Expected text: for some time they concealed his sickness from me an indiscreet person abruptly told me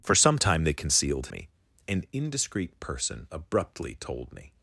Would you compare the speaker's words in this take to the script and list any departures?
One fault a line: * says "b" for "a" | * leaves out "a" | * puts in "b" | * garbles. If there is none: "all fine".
* leaves out "his sickness from"